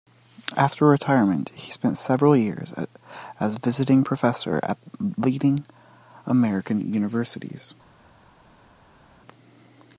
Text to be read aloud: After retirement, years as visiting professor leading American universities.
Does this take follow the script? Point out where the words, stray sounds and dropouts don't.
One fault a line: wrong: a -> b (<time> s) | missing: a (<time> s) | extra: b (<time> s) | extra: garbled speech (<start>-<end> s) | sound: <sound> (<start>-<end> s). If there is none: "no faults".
extra: he spent several (1.5 s)
extra: at (4.6 s)